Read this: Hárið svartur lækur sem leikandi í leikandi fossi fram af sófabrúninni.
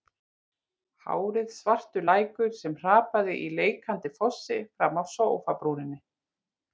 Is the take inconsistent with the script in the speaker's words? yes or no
yes